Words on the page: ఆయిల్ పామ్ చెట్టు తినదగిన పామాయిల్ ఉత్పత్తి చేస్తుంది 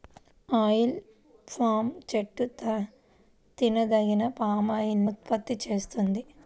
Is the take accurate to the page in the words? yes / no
yes